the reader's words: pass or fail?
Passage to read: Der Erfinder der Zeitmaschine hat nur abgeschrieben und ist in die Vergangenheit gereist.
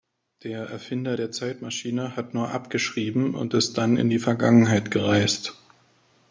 fail